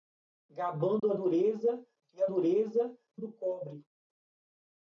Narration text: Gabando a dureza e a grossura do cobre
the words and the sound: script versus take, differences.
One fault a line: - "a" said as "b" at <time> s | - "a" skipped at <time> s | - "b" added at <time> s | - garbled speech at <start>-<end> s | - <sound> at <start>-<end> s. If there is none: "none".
- dropout at 1.0-1.0 s
- "grossura" said as "dureza" at 2.3 s